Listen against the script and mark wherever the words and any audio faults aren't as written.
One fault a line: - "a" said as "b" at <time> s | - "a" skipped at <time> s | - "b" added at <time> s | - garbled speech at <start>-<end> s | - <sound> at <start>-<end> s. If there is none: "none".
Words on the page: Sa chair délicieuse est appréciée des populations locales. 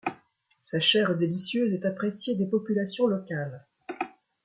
none